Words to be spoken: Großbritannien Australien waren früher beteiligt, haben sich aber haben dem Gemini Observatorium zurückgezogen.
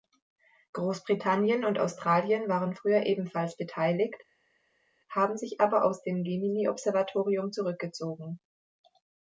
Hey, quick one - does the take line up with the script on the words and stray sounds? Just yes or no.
no